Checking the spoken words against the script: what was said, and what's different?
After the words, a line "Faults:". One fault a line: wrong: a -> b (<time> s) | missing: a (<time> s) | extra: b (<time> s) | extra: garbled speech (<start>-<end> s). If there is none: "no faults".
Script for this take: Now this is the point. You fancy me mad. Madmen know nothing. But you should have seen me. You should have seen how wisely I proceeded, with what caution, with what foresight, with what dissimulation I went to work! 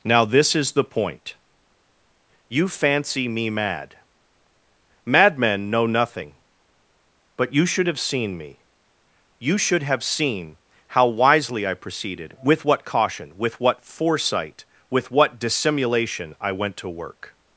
Now this is the point. You fancy me mad. Madmen know nothing. But you should have seen me. You should have seen how wisely I proceeded, with what caution, with what foresight, with what dissimulation I went to work!
Faults:
no faults